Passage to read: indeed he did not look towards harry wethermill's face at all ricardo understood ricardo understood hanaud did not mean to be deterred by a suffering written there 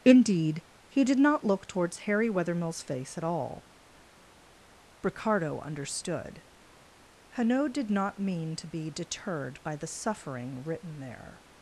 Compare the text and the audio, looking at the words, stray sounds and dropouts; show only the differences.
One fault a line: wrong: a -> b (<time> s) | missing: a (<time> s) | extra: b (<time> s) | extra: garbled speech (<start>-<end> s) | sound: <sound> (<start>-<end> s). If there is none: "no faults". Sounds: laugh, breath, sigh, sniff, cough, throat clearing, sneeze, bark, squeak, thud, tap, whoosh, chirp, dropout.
missing: ricardo understood (6.4 s)
wrong: a -> the (9.8 s)